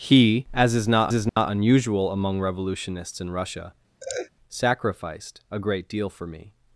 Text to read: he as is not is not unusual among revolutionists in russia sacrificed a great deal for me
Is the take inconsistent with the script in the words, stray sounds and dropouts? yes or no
yes